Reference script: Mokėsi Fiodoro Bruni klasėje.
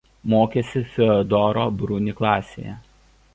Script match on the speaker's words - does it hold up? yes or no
yes